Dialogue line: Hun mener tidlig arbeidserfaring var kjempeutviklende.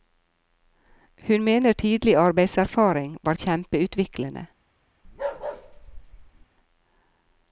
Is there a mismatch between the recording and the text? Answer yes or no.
no